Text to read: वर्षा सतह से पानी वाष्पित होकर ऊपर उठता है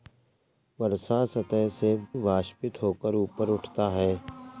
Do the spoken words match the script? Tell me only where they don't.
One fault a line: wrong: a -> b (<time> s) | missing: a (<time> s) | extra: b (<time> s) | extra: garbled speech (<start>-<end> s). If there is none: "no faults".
missing: पानी (1.9 s)